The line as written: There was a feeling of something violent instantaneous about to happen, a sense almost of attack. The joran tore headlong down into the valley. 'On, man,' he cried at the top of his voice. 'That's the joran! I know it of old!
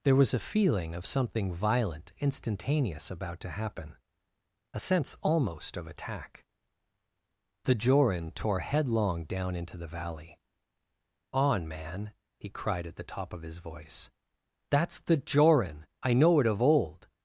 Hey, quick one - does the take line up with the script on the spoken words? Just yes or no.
yes